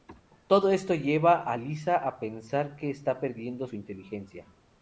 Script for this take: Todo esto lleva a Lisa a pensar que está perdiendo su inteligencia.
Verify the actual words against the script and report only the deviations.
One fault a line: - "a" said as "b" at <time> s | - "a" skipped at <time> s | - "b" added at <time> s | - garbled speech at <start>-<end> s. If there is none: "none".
none